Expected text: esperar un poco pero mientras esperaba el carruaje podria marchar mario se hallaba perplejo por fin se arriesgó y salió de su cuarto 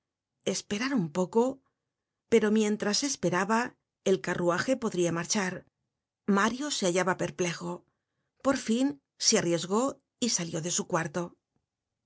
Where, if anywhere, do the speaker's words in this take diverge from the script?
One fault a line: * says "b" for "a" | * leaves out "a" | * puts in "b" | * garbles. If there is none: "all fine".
all fine